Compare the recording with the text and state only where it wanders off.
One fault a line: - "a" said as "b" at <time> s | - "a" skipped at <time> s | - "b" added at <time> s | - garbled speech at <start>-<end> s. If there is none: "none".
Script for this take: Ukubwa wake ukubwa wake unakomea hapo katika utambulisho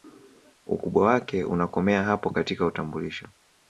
- "ukubwa wake" skipped at 1.4 s